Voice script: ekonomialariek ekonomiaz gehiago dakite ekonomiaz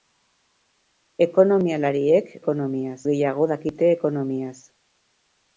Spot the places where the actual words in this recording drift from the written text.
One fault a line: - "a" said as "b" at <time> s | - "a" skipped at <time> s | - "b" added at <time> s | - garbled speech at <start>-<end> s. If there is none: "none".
none